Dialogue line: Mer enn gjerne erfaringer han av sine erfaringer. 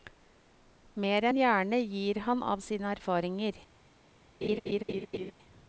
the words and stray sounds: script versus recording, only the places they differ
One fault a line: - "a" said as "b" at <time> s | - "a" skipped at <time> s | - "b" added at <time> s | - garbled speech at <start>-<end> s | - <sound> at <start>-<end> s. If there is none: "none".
- "erfaringer" said as "gir" at 1.8 s
- laugh at 4.4-5.3 s